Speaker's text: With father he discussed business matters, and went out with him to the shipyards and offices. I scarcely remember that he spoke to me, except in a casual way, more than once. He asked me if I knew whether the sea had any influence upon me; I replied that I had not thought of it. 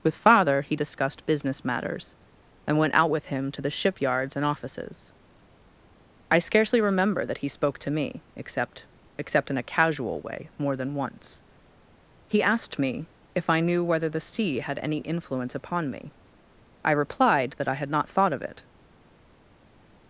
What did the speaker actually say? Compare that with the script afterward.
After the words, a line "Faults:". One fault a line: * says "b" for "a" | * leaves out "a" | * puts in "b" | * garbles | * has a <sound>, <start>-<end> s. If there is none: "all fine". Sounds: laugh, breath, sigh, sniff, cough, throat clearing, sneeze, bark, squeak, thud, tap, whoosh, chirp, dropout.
With father he discussed business matters, and went out with him to the shipyards and offices. I scarcely remember that he spoke to me, except except in a casual way, more than once. He asked me if I knew whether the sea had any influence upon me; I replied that I had not thought of it.
Faults:
* puts in "except"